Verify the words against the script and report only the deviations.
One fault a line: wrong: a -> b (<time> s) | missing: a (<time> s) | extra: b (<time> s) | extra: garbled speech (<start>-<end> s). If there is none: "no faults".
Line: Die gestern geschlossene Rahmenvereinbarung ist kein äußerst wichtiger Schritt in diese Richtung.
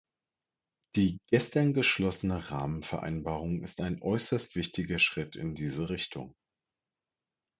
wrong: kein -> ein (3.8 s)